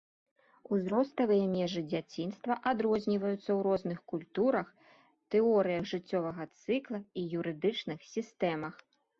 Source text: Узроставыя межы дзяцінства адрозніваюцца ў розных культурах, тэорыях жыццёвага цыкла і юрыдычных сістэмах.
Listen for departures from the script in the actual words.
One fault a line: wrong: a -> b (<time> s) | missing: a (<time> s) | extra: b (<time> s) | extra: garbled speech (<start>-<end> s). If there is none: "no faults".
no faults